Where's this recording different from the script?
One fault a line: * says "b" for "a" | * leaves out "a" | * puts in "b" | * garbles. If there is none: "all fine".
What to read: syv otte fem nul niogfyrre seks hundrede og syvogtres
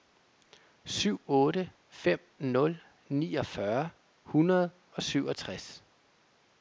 * leaves out "seks"